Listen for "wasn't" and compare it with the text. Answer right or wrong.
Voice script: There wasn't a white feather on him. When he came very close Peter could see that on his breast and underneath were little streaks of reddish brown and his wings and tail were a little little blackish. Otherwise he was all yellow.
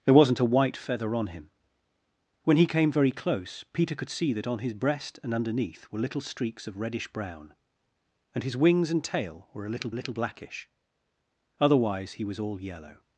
right